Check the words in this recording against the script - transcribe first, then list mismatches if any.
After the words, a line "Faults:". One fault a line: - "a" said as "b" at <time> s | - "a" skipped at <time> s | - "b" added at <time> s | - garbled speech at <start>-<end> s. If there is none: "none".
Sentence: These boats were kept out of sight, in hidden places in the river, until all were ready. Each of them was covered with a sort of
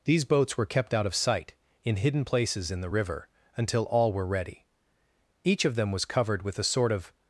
These boats were kept out of sight, in hidden places in the river, until all were ready. Each of them was covered with a sort of
Faults:
none